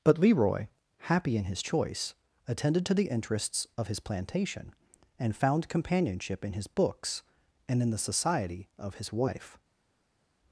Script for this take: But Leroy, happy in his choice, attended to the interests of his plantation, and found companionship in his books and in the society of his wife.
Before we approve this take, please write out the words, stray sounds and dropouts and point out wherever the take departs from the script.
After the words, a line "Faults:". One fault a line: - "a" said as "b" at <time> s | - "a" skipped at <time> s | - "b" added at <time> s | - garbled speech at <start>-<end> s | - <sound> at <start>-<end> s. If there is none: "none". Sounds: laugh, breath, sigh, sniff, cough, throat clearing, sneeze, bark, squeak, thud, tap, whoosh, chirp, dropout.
But Leroy, happy in his choice, attended to the interests of his plantation, and found companionship in his books and in the society of his wife.
Faults:
none